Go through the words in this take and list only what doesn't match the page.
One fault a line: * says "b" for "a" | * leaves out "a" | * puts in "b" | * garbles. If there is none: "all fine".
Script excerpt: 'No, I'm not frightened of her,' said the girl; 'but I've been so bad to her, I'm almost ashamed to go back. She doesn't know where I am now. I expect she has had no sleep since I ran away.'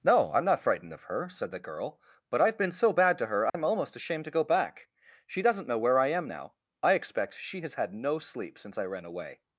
all fine